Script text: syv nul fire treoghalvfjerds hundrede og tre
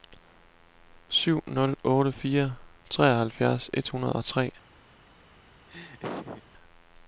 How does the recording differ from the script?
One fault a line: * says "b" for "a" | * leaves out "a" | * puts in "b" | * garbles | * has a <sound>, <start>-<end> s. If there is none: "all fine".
* puts in "otte"
* puts in "et"
* has a laugh, 5.7-6.4 s